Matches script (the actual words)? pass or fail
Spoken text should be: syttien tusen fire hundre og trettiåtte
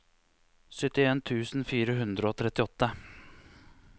pass